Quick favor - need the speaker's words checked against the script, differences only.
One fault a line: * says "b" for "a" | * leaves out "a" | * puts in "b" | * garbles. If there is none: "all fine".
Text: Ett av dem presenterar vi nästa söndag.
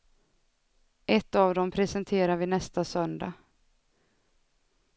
all fine